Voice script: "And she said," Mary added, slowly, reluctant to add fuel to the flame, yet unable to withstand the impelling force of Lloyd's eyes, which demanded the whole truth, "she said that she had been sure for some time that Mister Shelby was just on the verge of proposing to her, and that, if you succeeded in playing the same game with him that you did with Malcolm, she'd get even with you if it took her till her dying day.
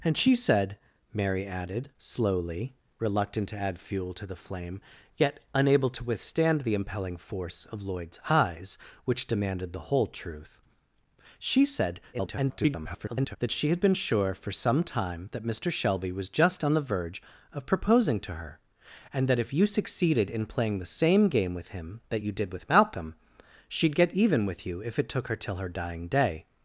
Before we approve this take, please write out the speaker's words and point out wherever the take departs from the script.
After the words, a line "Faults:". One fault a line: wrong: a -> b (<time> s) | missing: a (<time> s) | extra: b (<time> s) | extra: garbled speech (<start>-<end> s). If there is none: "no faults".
"And she said," Mary added, slowly, reluctant to add fuel to the flame, yet unable to withstand the impelling force of Lloyd's eyes, which demanded the whole truth, "she said [garbled] that she had been sure for some time that Mister Shelby was just on the verge of proposing to her, and that, if you succeeded in playing the same game with him that you did with Malcolm, she'd get even with you if it took her till her dying day.
Faults:
extra: garbled speech (12.1-13.4 s)